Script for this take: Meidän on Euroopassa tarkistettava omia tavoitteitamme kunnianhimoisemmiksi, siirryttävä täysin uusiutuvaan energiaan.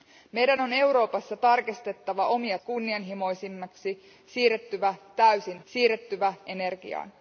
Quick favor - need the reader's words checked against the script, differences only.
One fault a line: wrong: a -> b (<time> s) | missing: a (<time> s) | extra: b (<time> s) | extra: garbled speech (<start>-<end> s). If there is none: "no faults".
missing: tavoitteitamme (2.6 s)
wrong: uusiutuvaan -> siirryttävä (5.6 s)